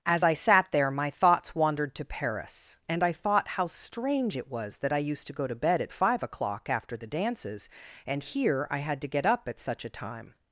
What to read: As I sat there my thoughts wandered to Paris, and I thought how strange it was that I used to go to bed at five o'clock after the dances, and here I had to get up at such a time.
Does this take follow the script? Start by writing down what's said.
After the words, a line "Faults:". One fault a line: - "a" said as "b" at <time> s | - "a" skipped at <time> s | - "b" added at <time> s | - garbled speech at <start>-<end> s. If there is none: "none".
As I sat there my thoughts wandered to Paris, and I thought how strange it was that I used to go to bed at five o'clock after the dances, and here I had to get up at such a time.
Faults:
none